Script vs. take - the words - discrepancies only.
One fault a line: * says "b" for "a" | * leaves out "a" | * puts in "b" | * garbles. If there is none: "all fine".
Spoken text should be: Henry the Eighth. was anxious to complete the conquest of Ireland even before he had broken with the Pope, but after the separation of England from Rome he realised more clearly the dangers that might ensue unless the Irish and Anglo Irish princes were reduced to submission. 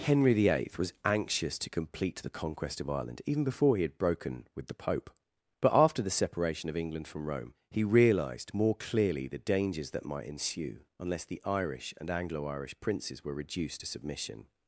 all fine